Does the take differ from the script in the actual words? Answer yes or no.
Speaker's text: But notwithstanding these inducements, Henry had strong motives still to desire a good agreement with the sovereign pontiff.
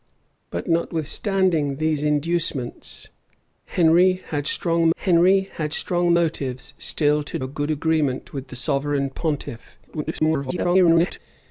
yes